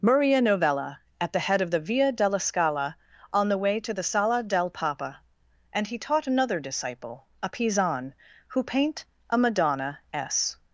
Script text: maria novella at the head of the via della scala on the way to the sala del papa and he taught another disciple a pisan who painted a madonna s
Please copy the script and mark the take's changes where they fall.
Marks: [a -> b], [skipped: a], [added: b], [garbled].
maria novella at the head of the via della scala on the way to the sala del papa and he taught another disciple a pisan who [painted -> paint] a madonna s